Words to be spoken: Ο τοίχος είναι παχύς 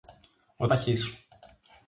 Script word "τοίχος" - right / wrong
wrong